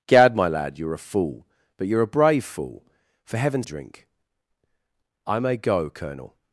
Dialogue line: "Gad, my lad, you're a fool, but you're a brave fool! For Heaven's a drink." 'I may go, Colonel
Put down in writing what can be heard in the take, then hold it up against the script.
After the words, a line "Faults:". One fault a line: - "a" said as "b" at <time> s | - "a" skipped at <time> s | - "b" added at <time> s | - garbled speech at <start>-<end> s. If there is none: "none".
"Gad, my lad, you're a fool, but you're a brave fool! For Heaven's a drink." 'I may go, Colonel
Faults:
none